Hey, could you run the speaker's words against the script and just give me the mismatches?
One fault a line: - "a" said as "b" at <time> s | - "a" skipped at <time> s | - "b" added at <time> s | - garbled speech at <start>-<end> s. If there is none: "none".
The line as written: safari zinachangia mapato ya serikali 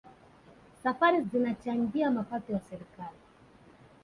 none